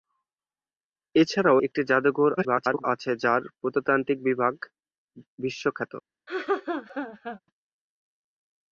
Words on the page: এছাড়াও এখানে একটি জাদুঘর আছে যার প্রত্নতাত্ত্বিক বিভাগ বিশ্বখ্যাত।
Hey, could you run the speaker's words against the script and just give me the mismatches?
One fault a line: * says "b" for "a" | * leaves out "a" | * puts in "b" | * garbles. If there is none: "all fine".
* leaves out "এখানে"
* garbles